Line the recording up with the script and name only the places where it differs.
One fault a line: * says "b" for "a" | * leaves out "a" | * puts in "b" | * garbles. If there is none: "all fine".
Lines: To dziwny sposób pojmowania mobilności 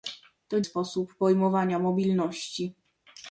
* leaves out "dziwny"